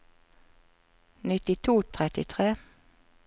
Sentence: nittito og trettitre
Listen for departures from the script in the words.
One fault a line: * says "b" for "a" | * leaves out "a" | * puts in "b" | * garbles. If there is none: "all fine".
all fine